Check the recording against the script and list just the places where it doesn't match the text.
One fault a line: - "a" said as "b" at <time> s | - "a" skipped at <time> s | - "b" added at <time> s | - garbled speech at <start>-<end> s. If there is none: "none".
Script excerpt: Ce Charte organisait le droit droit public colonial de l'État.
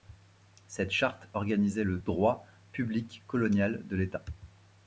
- "Ce" said as "Cette" at 0.7 s
- "droit" skipped at 2.5 s